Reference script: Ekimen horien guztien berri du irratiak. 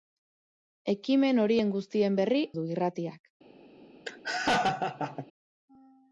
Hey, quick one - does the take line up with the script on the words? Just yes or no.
yes